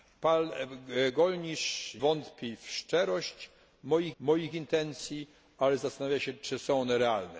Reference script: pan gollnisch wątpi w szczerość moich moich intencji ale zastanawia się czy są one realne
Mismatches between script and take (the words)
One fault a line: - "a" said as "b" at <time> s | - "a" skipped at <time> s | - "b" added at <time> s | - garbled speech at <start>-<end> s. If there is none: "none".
none